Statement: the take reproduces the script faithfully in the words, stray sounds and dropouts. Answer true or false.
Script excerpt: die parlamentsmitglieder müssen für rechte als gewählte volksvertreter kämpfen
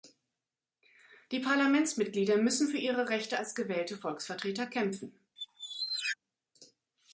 false